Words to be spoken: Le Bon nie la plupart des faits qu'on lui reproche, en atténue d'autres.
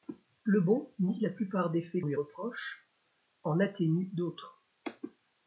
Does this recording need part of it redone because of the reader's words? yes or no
yes